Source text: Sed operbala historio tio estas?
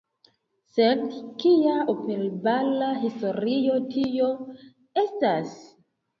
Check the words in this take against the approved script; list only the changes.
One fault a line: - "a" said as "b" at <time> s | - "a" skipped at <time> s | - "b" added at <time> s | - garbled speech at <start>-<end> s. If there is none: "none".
- "kia" added at 1.4 s